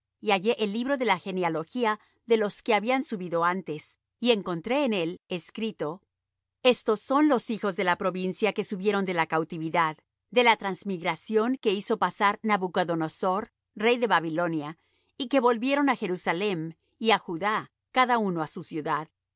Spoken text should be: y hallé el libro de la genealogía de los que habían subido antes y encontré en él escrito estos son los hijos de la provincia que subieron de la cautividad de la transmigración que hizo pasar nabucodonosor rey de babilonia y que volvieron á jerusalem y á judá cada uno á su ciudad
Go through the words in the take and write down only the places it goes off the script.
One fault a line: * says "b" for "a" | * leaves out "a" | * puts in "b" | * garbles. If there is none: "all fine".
all fine